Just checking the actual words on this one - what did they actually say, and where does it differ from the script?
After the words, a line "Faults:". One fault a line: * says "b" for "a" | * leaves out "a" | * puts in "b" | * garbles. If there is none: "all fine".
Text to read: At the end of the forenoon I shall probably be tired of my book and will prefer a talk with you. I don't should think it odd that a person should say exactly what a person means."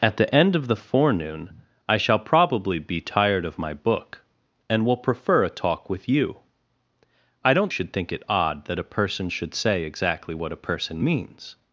At the end of the forenoon I shall probably be tired of my book and will prefer a talk with you. I don't should think it odd that a person should say exactly what a person means."
Faults:
all fine